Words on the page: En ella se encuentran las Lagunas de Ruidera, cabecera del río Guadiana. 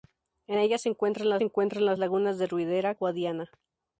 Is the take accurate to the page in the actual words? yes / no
no